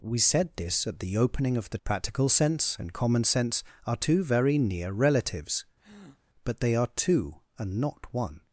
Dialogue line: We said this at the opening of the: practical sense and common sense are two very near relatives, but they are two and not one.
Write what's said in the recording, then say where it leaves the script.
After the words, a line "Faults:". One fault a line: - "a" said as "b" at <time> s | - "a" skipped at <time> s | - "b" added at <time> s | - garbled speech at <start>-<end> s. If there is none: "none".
We said this at the opening of the: practical sense and common sense are two very near relatives, but they are two and not one.
Faults:
none